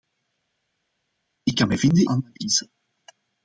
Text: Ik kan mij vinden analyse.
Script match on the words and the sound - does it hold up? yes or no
yes